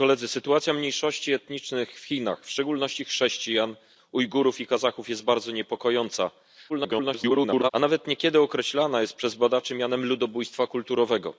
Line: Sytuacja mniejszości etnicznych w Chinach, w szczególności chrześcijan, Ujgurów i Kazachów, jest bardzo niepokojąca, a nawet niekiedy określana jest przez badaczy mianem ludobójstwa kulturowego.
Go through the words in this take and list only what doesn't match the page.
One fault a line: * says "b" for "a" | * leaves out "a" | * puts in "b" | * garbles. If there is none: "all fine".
* garbles